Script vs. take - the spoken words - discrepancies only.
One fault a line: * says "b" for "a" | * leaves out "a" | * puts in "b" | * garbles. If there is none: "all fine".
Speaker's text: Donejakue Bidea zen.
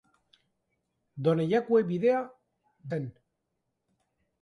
all fine